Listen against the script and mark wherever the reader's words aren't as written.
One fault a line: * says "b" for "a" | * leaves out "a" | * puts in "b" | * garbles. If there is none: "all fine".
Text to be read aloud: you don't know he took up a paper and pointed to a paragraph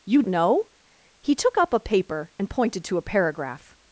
* leaves out "don't"